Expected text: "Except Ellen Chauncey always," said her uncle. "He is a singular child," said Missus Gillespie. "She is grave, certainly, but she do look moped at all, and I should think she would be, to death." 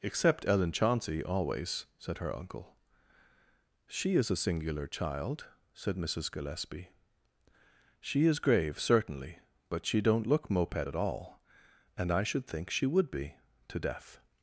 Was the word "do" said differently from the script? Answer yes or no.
yes